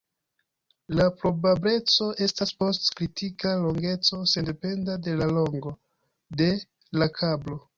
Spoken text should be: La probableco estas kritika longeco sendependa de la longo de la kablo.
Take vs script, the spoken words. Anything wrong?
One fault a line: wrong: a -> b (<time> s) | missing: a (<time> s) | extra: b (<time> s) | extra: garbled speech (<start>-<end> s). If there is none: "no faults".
extra: post (2.6 s)